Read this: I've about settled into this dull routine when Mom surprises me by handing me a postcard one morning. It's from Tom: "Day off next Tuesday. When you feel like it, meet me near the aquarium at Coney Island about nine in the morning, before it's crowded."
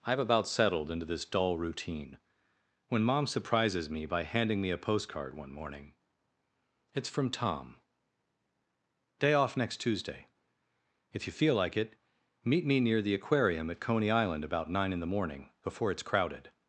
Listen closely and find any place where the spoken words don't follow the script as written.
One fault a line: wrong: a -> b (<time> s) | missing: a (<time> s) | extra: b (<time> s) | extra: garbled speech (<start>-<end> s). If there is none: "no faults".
wrong: When -> If (11.1 s)